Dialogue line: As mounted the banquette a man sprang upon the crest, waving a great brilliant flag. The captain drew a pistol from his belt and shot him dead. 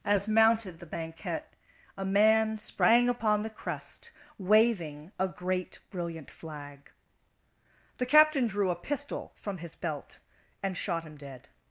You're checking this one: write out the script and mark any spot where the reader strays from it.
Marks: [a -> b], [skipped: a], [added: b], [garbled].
As mounted the banquette a man sprang upon the crest, waving a great brilliant flag. The captain drew a pistol from his belt and shot him dead.